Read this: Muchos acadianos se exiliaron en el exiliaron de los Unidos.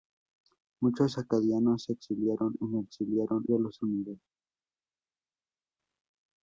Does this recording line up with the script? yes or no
yes